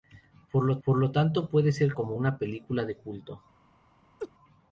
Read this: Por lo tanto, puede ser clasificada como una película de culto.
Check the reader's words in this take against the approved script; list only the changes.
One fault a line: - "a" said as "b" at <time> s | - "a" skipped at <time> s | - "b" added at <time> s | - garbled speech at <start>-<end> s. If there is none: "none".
- "por lo" added at 0.8 s
- "clasificada" skipped at 1.9 s